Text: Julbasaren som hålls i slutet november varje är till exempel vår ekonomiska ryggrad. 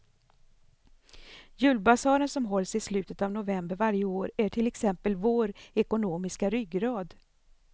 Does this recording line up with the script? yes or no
no